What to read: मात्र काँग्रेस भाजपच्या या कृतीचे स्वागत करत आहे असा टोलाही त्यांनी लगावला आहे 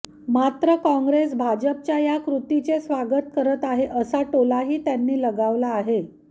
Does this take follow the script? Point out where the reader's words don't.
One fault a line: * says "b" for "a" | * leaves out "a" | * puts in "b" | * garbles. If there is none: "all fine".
all fine